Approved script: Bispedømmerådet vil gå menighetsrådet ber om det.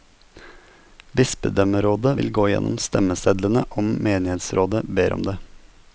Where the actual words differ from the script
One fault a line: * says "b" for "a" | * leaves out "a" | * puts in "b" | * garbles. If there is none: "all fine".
* puts in "gjennom stemmesedlene om"